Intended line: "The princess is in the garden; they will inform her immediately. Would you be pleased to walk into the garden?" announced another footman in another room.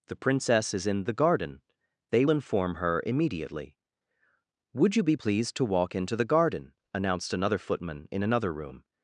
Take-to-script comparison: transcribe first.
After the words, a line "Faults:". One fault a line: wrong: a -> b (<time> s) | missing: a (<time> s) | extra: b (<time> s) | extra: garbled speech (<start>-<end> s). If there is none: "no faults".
"The princess is in the garden; they inform her immediately. Would you be pleased to walk into the garden?" announced another footman in another room.
Faults:
missing: will (2.2 s)